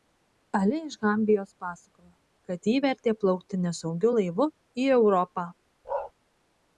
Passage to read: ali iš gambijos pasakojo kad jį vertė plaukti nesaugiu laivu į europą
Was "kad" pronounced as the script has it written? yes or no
yes